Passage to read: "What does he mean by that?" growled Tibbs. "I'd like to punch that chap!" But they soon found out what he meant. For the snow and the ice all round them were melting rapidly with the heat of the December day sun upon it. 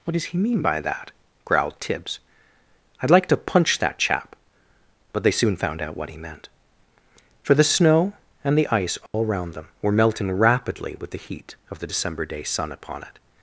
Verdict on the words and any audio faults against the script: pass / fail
fail